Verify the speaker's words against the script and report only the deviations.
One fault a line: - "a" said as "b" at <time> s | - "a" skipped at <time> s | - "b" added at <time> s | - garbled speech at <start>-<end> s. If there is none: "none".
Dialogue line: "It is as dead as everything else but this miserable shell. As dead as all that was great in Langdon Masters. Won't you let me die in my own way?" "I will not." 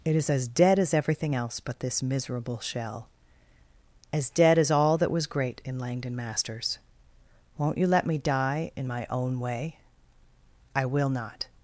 none